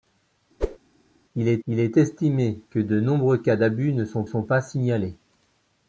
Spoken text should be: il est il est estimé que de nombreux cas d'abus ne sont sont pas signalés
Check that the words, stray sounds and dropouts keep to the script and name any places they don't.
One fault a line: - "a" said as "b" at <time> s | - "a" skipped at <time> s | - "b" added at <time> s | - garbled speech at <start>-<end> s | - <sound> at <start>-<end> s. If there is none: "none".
- whoosh at 0.6-0.8 s